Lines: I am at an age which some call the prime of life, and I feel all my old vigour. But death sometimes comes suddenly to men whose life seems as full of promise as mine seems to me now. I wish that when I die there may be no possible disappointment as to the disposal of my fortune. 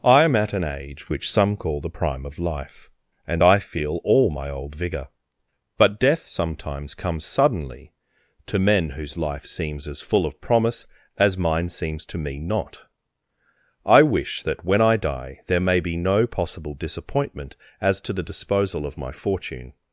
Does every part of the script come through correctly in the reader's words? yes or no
no